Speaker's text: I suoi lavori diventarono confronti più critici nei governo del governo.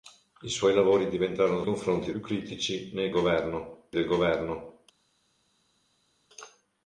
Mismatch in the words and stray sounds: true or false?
false